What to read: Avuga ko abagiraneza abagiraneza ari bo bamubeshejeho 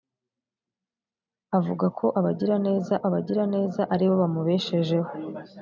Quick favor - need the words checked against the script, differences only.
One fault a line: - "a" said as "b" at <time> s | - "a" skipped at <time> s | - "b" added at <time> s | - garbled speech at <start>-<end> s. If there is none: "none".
none